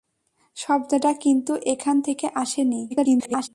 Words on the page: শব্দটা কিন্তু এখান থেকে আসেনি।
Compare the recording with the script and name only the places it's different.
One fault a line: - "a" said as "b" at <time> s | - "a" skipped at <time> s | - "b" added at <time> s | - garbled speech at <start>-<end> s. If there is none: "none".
- garbled speech at 2.9-3.5 s